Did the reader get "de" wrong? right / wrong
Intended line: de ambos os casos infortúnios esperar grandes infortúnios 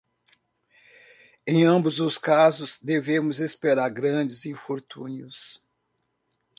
wrong